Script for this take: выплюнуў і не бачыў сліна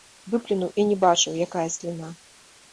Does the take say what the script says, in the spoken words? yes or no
no